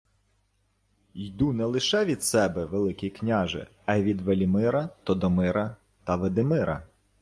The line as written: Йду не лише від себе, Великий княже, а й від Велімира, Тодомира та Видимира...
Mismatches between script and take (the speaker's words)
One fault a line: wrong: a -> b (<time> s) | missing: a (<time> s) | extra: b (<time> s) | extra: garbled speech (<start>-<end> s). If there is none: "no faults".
no faults